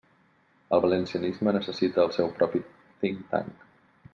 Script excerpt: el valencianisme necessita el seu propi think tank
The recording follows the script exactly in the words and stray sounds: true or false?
true